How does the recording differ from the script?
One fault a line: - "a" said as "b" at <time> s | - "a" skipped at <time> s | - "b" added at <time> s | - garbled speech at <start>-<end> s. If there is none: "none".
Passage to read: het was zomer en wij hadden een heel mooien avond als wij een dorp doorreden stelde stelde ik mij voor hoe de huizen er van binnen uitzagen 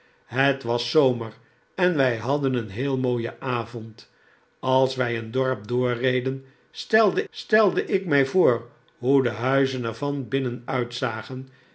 none